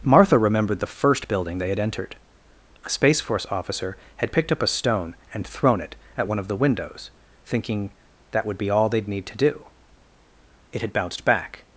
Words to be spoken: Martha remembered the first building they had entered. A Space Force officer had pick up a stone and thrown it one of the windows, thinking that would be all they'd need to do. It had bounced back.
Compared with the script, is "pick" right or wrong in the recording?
wrong